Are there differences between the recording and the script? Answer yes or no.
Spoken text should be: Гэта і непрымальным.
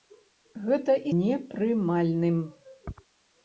no